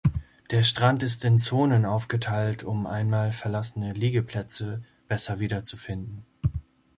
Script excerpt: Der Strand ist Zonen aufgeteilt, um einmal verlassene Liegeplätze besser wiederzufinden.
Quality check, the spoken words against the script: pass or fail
fail